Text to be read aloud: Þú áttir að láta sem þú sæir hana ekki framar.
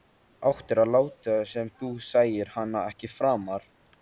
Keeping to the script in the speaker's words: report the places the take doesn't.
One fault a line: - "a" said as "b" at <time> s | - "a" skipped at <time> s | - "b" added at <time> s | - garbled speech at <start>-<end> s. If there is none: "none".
none